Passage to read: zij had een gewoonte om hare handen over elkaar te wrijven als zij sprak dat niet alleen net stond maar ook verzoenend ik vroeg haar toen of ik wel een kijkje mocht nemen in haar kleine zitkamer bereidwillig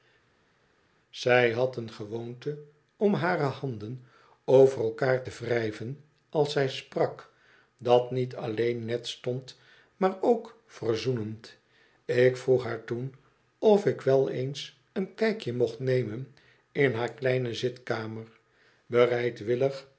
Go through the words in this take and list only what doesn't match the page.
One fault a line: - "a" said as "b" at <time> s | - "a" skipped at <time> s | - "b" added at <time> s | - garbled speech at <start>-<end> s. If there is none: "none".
- "eens" added at 14.3 s